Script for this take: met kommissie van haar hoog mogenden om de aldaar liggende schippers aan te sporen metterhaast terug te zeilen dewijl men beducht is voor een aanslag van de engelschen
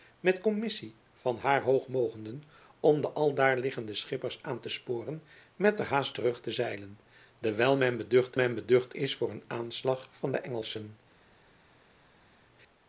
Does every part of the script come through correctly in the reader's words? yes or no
no